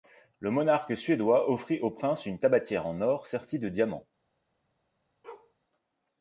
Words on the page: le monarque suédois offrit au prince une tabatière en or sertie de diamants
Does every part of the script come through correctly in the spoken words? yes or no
yes